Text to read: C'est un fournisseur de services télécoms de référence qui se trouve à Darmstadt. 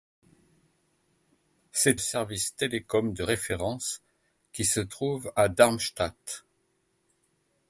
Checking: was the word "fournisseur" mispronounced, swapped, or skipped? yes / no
yes